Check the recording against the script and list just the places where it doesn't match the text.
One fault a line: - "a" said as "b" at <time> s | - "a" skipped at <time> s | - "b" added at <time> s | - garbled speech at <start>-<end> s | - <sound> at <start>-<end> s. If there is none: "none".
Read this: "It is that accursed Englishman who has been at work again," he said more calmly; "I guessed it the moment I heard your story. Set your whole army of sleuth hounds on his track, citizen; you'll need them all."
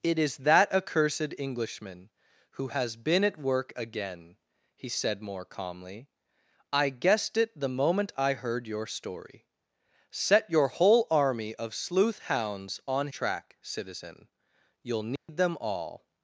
- "his" skipped at 13.1 s
- dropout at 15.2-15.3 s